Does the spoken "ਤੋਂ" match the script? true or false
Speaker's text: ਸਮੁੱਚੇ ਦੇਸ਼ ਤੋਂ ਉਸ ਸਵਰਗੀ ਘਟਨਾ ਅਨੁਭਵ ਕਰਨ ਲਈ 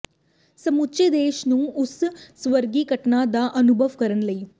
false